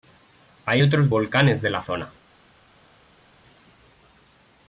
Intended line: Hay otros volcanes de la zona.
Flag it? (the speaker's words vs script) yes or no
no